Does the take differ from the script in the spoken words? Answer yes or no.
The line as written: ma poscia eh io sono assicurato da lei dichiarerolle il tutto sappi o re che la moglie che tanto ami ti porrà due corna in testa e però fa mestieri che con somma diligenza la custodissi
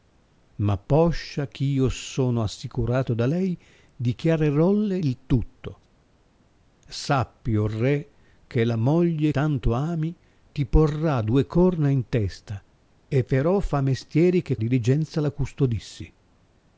yes